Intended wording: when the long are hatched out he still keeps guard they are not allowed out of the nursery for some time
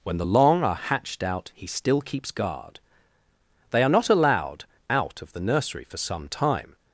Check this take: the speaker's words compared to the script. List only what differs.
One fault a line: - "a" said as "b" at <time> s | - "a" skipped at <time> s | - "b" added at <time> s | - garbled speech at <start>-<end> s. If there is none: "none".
none